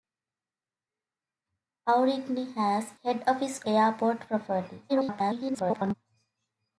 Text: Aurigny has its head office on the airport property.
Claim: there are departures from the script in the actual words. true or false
true